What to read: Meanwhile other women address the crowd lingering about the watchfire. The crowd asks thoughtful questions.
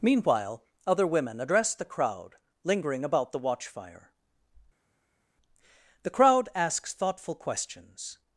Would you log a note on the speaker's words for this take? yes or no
no